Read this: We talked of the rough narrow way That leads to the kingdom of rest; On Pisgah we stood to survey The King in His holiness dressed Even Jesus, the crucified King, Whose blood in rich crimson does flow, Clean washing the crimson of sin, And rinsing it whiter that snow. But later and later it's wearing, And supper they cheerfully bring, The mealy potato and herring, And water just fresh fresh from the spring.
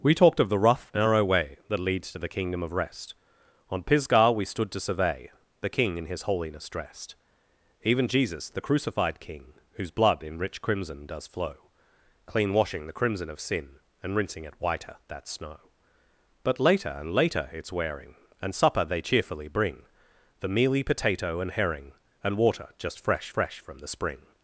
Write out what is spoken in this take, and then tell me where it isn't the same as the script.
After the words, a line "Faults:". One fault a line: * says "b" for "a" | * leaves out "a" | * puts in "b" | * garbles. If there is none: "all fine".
We talked of the rough narrow way That leads to the kingdom of rest; On Pisgah we stood to survey The King in His holiness dressed Even Jesus, the crucified King, Whose blood in rich crimson does flow, Clean washing the crimson of sin, And rinsing it whiter that snow. But later and later it's wearing, And supper they cheerfully bring, The mealy potato and herring, And water just fresh fresh from the spring.
Faults:
all fine